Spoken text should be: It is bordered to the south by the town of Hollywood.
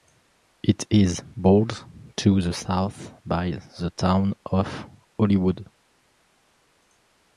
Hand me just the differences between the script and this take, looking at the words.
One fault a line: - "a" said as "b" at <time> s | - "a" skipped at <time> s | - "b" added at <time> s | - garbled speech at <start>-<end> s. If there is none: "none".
none